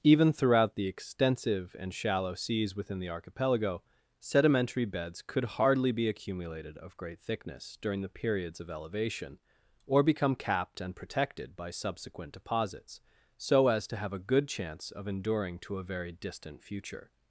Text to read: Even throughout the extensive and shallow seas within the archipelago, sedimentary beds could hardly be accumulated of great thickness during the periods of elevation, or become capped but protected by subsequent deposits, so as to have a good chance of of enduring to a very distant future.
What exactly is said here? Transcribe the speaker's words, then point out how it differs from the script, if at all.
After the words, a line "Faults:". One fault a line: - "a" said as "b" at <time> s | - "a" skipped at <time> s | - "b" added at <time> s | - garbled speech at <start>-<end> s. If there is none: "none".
Even throughout the extensive and shallow seas within the archipelago, sedimentary beds could hardly be accumulated of great thickness during the periods of elevation, or become capped and protected by subsequent deposits, so as to have a good chance of enduring to a very distant future.
Faults:
- "but" said as "and" at 10.8 s
- "of" skipped at 15.1 s